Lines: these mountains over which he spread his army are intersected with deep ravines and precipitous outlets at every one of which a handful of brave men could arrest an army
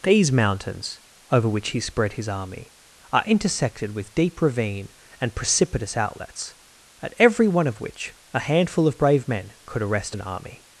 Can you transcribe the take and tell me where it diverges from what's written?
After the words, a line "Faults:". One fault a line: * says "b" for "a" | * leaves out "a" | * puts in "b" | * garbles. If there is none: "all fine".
these mountains over which he spread his army are intersected with deep ravine and precipitous outlets at every one of which a handful of brave men could arrest an army
Faults:
* says "ravine" for "ravines"